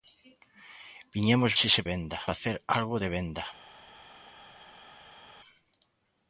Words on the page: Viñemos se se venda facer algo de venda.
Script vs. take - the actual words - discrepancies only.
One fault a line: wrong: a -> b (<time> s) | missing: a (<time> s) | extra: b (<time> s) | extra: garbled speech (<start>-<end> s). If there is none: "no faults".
no faults